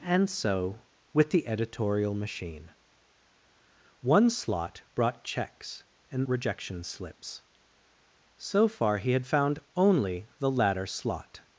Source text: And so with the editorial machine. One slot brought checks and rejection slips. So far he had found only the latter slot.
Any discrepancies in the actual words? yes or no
no